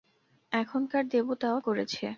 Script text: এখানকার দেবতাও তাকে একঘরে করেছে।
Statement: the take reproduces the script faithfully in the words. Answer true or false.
false